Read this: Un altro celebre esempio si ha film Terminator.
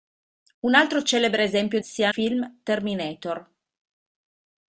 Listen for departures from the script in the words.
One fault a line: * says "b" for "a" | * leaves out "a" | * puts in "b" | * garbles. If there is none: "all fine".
all fine